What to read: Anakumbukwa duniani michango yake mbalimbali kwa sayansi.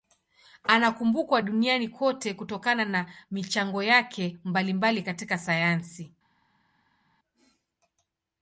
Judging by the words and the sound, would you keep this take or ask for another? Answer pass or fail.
fail